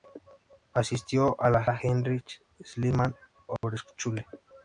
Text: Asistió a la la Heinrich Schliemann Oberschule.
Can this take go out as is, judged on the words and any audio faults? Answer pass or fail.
fail